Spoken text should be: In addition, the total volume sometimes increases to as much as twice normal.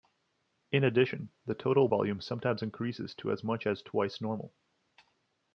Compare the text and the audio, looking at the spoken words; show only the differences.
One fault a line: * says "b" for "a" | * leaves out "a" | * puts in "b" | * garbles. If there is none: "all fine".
all fine